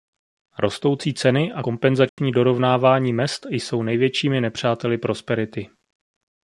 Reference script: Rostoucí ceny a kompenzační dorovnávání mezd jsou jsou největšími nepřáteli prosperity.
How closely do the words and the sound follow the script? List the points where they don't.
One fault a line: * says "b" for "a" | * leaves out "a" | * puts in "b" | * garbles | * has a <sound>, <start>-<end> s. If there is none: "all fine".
* has a dropout, 2.1-2.2 s
* leaves out "jsou"